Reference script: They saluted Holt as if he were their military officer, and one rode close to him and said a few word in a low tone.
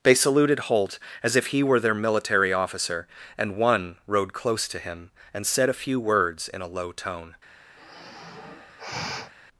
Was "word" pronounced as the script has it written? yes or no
no